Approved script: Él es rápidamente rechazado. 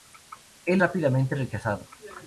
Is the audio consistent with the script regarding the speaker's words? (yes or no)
no